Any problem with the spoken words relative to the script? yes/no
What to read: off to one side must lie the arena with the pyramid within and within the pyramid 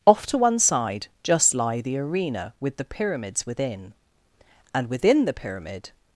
yes